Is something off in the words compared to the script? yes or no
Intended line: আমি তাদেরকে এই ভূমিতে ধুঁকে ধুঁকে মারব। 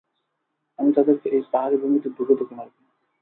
yes